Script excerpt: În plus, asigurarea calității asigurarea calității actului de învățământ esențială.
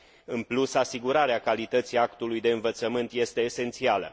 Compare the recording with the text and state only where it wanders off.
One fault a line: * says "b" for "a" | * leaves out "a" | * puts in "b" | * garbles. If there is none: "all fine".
* leaves out "asigurarea calității"
* puts in "este"